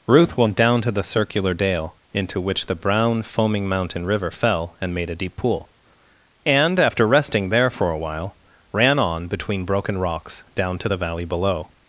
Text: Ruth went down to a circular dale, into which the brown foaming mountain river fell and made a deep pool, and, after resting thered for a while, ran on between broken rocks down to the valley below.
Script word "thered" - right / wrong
wrong